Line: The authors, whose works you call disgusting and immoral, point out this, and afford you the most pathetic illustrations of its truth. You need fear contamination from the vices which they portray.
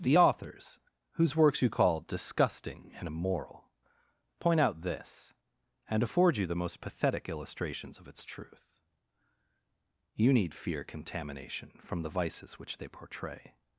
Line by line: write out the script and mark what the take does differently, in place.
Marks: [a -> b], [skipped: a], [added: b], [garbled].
The authors, whose works you call disgusting and immoral, point out this, and afford you the most pathetic illustrations of its truth. You need fear contamination from the vices which they portray.